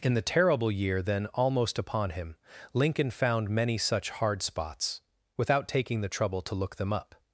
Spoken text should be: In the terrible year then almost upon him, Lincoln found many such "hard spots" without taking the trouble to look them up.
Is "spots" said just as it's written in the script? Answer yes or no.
yes